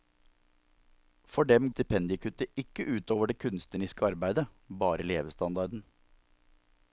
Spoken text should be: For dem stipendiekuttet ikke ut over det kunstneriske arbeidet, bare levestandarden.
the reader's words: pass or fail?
pass